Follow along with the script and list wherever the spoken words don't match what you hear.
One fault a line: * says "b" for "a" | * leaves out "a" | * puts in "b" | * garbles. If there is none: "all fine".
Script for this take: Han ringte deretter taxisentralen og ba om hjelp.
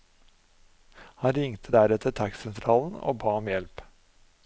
all fine